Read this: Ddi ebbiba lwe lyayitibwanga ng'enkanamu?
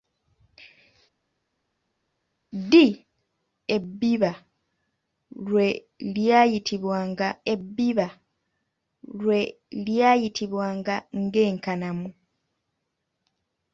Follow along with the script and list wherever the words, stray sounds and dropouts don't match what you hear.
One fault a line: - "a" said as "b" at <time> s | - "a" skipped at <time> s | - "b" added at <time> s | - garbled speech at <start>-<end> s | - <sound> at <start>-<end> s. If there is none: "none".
- "ebbiba lwe lyayitibwanga" added at 7.5 s